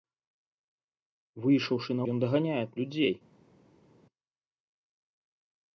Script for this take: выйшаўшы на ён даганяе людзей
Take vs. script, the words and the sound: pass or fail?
pass